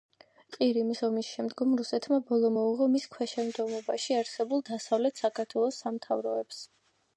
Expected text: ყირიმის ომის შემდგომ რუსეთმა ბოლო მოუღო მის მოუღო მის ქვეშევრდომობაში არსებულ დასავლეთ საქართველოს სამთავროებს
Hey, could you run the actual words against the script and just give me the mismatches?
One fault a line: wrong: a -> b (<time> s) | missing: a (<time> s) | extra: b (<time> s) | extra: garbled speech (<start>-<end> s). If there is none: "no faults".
missing: მოუღო მის (3.1 s)